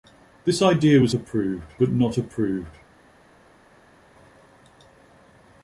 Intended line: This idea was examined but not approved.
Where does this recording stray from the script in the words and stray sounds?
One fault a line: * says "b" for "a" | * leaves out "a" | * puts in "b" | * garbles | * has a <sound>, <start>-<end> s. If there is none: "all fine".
* says "approved" for "examined"